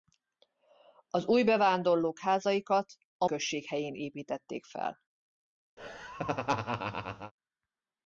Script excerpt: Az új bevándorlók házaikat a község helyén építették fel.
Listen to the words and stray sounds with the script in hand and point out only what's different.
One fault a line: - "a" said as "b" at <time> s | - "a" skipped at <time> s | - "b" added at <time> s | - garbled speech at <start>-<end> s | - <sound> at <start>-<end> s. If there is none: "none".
- laugh at 5.8-7.3 s